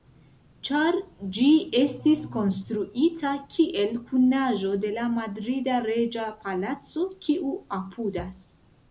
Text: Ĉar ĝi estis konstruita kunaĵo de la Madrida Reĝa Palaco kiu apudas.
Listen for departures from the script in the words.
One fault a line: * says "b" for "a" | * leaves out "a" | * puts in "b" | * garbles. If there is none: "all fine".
* puts in "kiel"